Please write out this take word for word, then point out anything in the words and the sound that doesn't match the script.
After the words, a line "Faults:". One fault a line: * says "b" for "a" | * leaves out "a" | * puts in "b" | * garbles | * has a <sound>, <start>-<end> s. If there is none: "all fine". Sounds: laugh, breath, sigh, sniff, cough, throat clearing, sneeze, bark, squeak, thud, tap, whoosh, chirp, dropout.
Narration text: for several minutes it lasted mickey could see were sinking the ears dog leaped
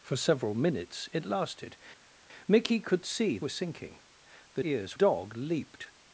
for several minutes it lasted mickey could see were sinking the ears dog leaped
Faults:
all fine